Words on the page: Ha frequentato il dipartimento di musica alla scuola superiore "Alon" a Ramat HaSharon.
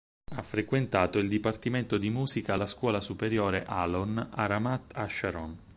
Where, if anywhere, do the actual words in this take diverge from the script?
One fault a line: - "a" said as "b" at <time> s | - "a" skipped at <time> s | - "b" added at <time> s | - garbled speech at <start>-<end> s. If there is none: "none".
none